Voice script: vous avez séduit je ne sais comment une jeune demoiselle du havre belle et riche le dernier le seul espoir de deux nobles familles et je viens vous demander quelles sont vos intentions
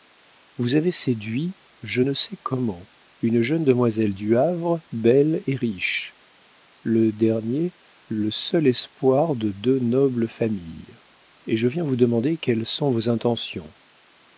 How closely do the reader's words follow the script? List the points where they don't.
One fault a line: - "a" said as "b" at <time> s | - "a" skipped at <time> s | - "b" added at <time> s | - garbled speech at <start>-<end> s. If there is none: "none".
none